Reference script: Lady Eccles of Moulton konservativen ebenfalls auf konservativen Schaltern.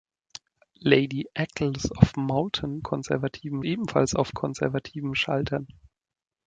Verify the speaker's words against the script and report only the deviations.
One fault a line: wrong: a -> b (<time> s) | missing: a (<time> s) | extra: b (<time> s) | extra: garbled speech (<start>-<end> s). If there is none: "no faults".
no faults